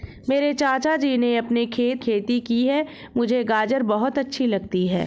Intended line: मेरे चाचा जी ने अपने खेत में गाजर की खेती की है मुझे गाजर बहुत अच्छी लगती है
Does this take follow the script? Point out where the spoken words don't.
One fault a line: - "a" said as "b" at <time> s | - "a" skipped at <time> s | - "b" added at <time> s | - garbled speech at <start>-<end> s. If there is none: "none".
- "में गाजर की" skipped at 2.0 s